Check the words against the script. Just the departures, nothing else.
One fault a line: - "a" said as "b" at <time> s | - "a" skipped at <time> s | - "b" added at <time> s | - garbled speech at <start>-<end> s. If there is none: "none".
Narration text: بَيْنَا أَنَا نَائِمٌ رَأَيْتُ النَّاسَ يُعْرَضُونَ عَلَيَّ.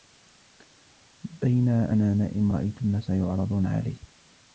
none